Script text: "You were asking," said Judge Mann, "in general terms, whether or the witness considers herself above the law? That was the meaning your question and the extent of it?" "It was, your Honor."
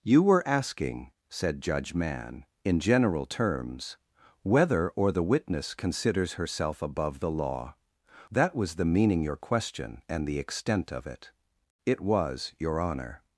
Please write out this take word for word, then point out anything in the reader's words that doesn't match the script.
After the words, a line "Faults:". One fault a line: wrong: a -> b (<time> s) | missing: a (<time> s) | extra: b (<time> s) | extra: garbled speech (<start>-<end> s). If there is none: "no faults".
"You were asking," said Judge Mann, "in general terms, whether or the witness considers herself above the law? That was the meaning your question and the extent of it?" "It was, your Honor."
Faults:
no faults